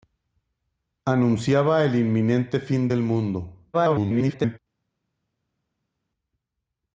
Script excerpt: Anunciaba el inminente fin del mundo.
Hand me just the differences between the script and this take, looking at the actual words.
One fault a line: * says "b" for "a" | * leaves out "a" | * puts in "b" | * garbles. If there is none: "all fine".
* garbles